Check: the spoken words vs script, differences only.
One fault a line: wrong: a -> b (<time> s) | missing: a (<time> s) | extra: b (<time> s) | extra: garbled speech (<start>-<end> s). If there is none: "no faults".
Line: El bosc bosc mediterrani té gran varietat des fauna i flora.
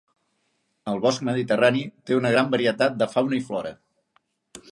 missing: bosc (1.2 s)
extra: una (2.2 s)
wrong: des -> de (3.0 s)